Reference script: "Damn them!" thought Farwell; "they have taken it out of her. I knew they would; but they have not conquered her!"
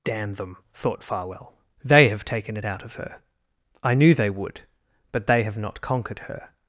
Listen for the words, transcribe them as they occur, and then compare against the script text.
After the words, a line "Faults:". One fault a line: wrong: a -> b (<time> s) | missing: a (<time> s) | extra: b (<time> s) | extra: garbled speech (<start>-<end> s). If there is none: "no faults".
"Damn them!" thought Farwell; "they have taken it out of her. I knew they would; but they have not conquered her!"
Faults:
no faults